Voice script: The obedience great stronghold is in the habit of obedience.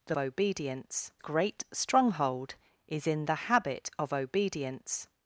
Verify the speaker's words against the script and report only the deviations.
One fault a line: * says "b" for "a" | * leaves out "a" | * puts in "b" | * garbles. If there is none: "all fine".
all fine